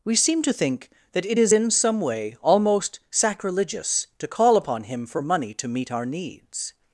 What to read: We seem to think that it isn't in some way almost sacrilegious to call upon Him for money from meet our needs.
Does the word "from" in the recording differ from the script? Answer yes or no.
yes